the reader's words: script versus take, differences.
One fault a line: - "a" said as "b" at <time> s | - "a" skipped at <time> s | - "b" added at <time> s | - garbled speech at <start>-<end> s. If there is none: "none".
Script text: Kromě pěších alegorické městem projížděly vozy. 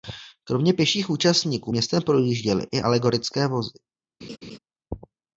- "alegorické" said as "účastníků" at 1.1 s
- "i alegorické" added at 2.7 s